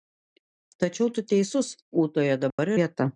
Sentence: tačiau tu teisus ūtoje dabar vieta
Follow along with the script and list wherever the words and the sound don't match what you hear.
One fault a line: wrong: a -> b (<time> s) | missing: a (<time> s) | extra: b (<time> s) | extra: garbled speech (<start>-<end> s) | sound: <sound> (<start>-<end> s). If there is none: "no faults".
sound: dropout (2.5-2.6 s)